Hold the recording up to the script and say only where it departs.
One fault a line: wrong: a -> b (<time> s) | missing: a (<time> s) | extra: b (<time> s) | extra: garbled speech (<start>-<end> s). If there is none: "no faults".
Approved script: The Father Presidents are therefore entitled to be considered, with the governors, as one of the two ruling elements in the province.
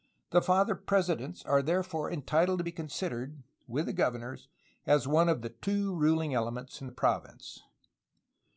no faults